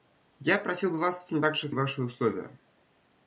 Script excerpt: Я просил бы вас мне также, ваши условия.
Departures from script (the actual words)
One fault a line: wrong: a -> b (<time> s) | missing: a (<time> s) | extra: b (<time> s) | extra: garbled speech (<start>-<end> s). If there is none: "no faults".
no faults